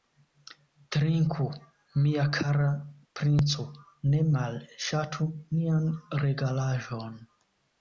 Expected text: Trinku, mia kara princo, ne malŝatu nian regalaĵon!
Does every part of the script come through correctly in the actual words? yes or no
yes